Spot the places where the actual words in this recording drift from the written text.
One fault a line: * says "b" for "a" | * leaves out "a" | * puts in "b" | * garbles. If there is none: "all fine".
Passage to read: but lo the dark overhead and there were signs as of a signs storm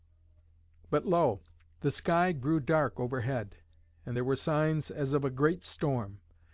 * puts in "sky grew"
* says "great" for "signs"